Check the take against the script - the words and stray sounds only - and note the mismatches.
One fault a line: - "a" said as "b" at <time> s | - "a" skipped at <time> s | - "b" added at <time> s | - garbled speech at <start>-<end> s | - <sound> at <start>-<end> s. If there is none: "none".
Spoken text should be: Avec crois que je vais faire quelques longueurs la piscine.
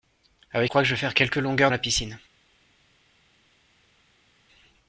none